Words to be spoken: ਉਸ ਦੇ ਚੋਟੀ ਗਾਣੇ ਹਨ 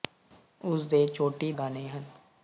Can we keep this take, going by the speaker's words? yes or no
yes